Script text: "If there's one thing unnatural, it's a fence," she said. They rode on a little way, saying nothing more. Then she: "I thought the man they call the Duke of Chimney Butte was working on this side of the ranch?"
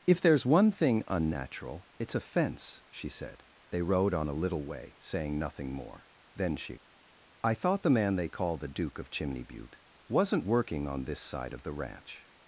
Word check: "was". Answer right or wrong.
wrong